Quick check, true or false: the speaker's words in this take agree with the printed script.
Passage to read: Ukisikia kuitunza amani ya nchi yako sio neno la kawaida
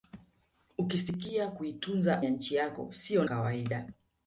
false